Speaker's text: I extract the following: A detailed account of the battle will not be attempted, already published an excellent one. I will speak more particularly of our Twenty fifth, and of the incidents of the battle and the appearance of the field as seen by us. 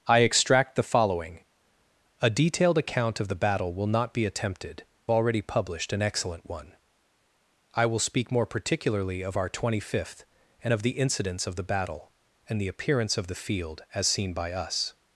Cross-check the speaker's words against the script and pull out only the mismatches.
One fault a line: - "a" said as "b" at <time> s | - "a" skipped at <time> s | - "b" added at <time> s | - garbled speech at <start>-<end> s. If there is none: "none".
none